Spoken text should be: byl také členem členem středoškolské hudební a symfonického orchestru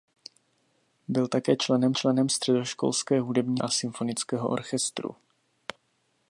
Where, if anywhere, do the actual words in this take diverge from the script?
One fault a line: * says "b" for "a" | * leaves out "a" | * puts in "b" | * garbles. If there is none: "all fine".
all fine